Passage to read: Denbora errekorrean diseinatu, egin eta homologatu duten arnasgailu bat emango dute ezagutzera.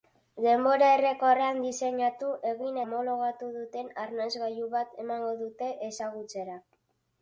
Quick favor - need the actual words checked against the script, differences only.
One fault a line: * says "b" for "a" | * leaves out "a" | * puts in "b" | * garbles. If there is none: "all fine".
* leaves out "eta"